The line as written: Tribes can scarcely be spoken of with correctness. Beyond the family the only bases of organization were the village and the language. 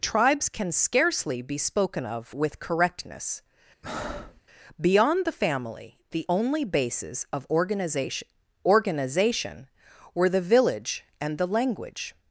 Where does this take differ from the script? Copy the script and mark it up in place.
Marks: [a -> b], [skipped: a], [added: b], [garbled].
Tribes can scarcely be spoken of with correctness. Beyond the family the only bases of organization [added: organization] were the village and the language.